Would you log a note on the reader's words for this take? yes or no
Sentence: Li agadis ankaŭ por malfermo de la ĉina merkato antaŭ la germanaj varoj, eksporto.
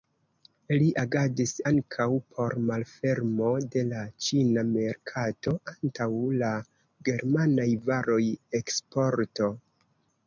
no